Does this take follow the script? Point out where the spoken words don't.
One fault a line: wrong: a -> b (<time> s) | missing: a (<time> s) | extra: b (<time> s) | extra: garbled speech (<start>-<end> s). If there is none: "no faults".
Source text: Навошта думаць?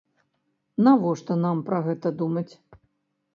extra: нам пра гэта (1.4 s)